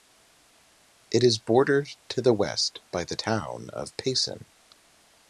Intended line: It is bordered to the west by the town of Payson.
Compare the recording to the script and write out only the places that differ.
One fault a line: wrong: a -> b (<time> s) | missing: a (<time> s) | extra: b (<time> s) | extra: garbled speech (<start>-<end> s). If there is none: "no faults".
no faults